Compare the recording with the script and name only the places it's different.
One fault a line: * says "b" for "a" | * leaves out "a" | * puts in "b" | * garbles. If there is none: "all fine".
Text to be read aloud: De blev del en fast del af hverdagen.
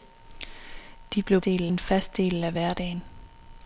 all fine